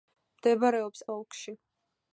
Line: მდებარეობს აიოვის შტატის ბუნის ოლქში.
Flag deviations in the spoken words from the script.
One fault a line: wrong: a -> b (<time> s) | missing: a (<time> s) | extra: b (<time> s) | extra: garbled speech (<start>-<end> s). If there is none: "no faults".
missing: აიოვის შტატის ბუნის (1.0 s)